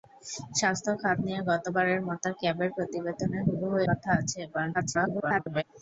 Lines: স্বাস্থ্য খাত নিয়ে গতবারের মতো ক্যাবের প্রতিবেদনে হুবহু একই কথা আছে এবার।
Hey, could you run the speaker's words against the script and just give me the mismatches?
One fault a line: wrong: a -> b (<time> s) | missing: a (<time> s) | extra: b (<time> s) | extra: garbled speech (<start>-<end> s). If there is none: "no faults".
missing: একই (3.8 s)
extra: garbled speech (4.7-5.6 s)